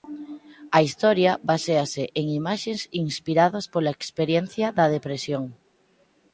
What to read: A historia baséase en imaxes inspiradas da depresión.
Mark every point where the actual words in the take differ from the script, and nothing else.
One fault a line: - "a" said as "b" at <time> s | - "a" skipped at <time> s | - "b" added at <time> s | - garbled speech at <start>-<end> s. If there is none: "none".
- "pola experiencia" added at 3.7 s